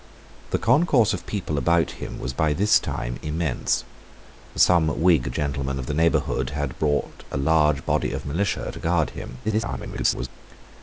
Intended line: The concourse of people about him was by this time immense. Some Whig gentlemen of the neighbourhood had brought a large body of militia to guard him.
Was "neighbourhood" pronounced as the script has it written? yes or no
yes